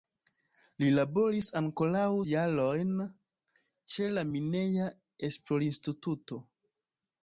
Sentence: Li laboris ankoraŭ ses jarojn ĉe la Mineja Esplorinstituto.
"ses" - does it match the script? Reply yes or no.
no